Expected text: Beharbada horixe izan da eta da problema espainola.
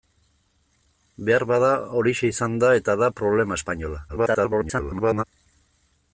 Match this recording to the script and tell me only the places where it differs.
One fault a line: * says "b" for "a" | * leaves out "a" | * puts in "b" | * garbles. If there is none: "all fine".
* garbles